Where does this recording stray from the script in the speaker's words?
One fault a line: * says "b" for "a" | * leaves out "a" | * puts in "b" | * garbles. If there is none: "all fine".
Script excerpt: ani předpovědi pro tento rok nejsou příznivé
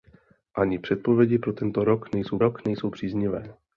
* puts in "rok nejsou"